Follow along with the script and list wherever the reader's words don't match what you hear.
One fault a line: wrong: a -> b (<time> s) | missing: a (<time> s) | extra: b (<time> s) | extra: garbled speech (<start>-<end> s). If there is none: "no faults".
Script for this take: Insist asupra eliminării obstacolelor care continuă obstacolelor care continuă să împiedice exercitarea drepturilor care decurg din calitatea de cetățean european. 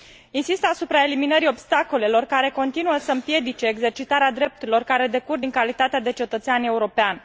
missing: obstacolelor care continuă (3.0 s)